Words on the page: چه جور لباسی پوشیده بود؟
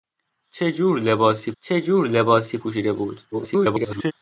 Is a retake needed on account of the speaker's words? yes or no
yes